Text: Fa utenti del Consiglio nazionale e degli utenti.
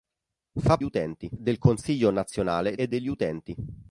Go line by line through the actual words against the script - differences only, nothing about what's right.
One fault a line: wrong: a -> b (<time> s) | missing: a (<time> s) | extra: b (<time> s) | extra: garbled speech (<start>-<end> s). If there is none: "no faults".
no faults